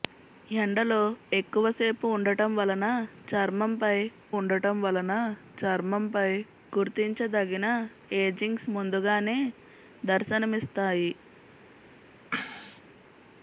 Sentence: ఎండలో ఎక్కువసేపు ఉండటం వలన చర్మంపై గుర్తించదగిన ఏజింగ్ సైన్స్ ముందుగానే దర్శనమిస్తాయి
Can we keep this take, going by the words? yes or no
no